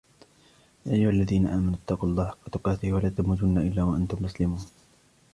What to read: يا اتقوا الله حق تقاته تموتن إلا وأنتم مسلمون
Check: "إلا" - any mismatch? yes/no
no